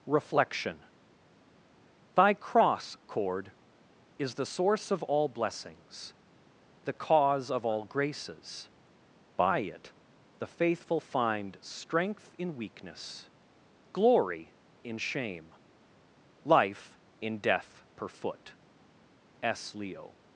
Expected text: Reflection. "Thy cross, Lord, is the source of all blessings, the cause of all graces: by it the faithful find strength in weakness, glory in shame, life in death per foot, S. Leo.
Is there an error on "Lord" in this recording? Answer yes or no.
yes